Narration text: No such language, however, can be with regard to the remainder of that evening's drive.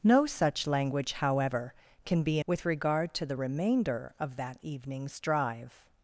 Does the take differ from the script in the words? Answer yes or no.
no